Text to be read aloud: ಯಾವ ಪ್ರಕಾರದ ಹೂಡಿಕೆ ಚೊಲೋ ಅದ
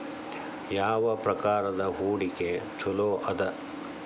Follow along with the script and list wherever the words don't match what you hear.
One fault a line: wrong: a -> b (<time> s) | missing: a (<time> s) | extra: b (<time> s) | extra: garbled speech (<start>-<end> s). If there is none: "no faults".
no faults